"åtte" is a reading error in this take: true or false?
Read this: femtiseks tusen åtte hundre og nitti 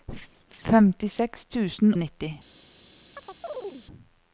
true